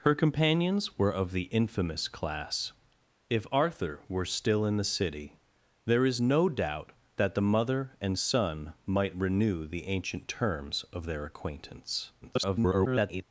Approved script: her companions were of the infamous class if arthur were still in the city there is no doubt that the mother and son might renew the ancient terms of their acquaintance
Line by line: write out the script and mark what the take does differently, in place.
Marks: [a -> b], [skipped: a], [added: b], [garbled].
her companions were of the infamous class if arthur were still in the city there is no doubt that the mother and son might renew the ancient terms of their acquaintance [garbled]